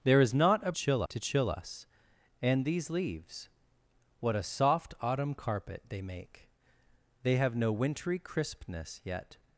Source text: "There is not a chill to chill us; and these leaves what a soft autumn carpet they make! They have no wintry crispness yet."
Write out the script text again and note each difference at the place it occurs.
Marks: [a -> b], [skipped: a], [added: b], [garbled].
"There is not a chill to chill us; and these leaves what a soft autumn carpet they make! They have no wintry crispness yet."